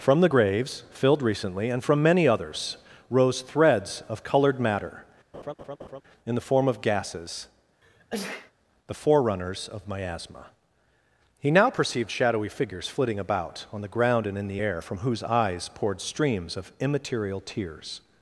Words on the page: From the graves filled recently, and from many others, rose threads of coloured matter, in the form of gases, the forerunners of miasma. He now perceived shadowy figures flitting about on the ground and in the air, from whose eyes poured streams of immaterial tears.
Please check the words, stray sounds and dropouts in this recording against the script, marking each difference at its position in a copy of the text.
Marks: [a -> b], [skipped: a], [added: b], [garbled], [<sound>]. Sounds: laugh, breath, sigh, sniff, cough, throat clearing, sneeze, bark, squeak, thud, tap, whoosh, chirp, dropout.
From the graves filled recently, and from many others, rose threads of coloured matter, [laugh] in the form of gases, [sneeze] the forerunners of miasma. He now perceived shadowy figures flitting about on the ground and in the air, from whose eyes poured streams of immaterial tears.